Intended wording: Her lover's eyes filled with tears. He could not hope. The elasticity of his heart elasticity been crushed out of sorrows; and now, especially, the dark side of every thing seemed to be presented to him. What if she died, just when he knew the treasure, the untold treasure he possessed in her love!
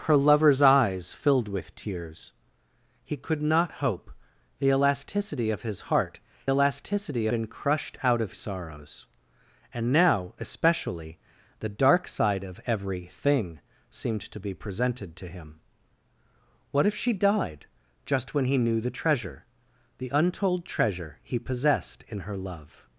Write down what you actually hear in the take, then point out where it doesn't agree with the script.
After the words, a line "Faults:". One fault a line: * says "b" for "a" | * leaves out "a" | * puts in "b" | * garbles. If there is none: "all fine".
Her lover's eyes filled with tears. He could not hope. The elasticity of his heart elasticity been crushed out of sorrows; and now, especially, the dark side of every thing seemed to be presented to him. What if she died, just when he knew the treasure, the untold treasure he possessed in her love!
Faults:
all fine